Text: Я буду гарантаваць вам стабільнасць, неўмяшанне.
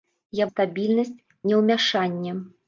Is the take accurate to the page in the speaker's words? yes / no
no